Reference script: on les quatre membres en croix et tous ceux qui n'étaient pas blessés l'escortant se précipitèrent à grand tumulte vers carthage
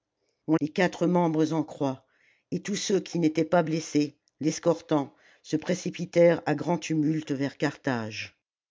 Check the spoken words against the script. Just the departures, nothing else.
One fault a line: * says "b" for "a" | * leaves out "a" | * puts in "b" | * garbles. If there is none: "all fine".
all fine